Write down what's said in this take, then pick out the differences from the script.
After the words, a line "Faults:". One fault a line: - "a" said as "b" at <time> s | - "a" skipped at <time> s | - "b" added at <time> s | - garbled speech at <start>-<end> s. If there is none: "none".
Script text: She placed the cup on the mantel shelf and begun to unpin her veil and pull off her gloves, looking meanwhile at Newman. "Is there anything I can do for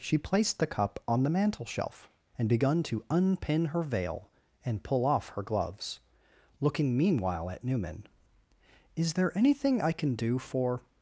She placed the cup on the mantel shelf and begun to unpin her veil and pull off her gloves, looking meanwhile at Newman. "Is there anything I can do for
Faults:
none